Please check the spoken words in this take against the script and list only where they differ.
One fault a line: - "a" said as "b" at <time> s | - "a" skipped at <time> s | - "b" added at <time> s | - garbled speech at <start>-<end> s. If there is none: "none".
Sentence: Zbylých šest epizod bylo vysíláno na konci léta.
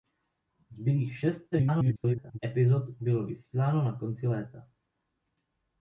- garbled speech at 1.5-2.4 s